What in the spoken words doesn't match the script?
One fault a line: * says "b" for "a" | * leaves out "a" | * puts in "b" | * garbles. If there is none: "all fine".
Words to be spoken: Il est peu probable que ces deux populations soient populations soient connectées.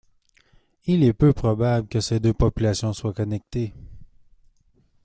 * leaves out "populations soient"